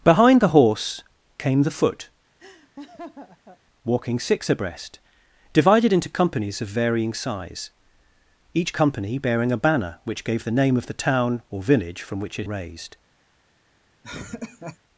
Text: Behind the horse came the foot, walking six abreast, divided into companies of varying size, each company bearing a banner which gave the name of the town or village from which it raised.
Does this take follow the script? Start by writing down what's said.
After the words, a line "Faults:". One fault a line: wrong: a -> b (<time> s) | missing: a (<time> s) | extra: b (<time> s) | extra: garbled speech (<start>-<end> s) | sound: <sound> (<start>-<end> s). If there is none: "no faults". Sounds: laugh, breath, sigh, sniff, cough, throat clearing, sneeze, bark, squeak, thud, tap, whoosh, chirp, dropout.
Behind the horse came the foot, walking six abreast, divided into companies of varying size, each company bearing a banner which gave the name of the town or village from which it raised.
Faults:
sound: laugh (2.4-3.6 s)
sound: laugh (14.0-14.8 s)